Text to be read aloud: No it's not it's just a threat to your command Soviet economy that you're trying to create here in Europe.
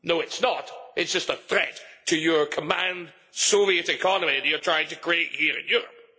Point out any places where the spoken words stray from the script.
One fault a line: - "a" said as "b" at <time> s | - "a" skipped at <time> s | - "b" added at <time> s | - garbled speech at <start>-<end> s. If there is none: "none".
none